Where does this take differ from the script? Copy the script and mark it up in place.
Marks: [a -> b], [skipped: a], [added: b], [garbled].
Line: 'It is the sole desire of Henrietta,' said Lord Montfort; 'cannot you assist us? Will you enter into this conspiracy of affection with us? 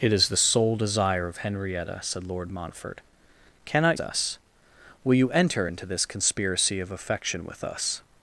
'It is the sole desire of Henrietta,' said Lord Montfort; 'cannot [skipped: you assist] us? Will you enter into this conspiracy of affection with us?